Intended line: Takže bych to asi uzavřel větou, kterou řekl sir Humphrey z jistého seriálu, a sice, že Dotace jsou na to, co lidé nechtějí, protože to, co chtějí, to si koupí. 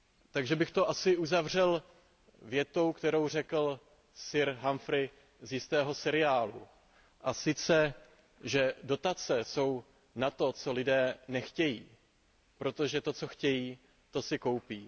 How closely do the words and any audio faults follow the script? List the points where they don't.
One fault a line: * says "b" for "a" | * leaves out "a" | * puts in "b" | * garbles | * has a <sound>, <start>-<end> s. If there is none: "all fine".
all fine